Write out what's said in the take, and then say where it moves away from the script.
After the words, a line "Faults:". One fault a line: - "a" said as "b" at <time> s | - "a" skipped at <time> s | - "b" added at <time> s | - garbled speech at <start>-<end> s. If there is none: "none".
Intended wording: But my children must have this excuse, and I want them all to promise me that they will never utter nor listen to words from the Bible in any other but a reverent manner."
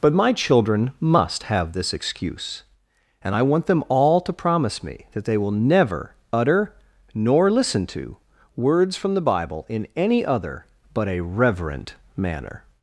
But my children must have this excuse, and I want them all to promise me that they will never utter nor listen to words from the Bible in any other but a reverent manner."
Faults:
none